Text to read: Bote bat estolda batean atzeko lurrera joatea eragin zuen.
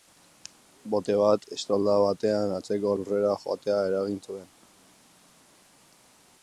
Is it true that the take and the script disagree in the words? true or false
false